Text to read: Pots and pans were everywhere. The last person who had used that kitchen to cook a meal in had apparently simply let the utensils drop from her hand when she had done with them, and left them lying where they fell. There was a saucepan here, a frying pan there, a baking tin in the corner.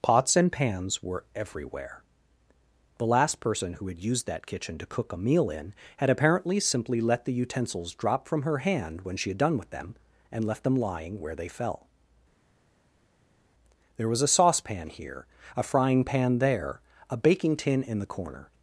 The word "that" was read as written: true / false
true